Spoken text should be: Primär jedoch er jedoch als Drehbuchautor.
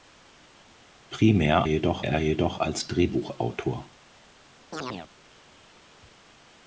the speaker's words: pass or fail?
pass